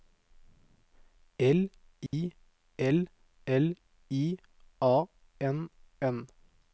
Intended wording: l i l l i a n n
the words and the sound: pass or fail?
fail